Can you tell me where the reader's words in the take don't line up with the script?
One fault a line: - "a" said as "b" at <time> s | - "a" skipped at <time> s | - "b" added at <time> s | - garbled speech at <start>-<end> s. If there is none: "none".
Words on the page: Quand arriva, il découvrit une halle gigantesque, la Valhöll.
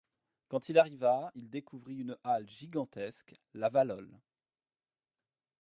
- "il" added at 0.7 s